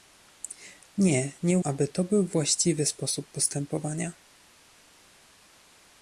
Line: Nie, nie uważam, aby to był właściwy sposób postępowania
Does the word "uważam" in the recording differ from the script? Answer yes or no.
yes